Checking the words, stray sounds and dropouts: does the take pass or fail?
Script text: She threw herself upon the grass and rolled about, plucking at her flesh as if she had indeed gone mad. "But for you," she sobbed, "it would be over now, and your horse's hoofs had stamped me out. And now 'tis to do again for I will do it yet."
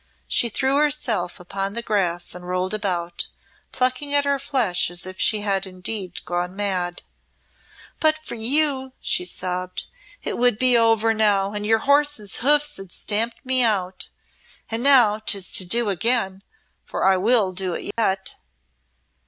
fail